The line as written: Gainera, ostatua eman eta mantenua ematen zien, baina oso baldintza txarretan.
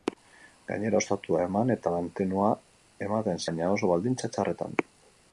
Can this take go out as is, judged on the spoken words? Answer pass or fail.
fail